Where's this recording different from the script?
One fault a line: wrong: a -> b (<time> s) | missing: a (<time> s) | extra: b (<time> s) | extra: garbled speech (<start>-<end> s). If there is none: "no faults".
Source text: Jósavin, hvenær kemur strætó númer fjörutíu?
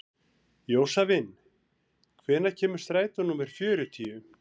no faults